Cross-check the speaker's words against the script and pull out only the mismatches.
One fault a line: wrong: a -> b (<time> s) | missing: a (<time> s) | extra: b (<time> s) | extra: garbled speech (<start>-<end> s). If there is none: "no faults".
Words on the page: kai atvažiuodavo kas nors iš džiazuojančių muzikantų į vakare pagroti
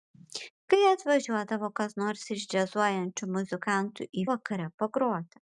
no faults